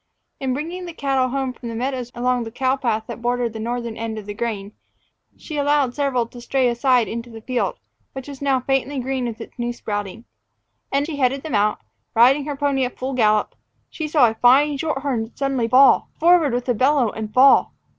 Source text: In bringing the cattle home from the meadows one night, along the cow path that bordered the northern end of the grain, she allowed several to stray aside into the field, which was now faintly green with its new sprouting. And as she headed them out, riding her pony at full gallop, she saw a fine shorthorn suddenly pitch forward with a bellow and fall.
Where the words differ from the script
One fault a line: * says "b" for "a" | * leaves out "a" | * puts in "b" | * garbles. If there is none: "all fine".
* leaves out "one night"
* leaves out "as"
* says "fall" for "pitch"